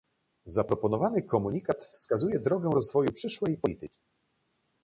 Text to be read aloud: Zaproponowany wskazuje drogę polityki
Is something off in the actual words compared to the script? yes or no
yes